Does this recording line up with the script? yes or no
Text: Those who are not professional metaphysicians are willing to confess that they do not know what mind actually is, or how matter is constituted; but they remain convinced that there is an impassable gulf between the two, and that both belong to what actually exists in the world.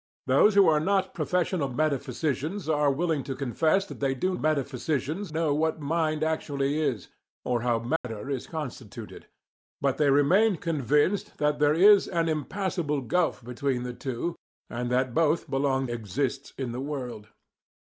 no